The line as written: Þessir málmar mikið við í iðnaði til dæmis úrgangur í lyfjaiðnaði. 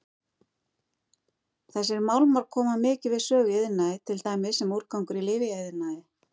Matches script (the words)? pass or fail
fail